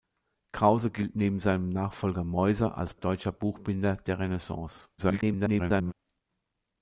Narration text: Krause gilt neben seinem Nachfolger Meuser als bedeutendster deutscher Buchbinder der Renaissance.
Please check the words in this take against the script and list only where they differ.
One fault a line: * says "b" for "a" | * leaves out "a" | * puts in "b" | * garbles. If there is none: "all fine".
* leaves out "bedeutendster"
* garbles